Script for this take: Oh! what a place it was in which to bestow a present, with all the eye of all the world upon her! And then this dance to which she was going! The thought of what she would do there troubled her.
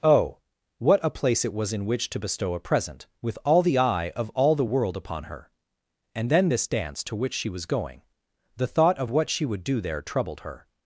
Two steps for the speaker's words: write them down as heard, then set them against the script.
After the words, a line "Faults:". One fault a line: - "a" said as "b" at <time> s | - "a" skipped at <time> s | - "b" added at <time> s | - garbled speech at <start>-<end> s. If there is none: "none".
Oh! what a place it was in which to bestow a present, with all the eye of all the world upon her! And then this dance to which she was going! The thought of what she would do there troubled her.
Faults:
none